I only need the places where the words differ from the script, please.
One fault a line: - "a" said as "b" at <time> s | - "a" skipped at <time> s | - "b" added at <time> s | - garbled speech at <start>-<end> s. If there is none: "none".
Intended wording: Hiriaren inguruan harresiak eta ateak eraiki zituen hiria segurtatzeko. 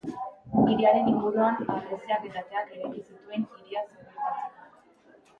none